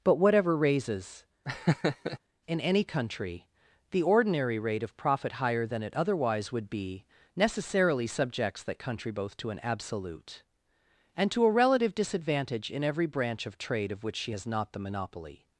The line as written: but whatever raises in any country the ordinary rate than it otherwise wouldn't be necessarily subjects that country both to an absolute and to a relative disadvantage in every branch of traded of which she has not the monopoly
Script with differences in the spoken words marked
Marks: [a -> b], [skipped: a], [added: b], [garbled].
but whatever raises in any country the ordinary rate [added: of profit higher] than it otherwise [wouldn't -> would] be necessarily subjects that country both to an absolute and to a relative disadvantage in every branch of [traded -> trade] of which she has not the monopoly